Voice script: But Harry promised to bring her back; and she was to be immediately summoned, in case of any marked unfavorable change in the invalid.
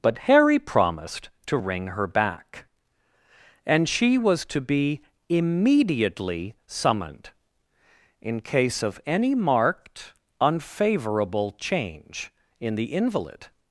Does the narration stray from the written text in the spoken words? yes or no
yes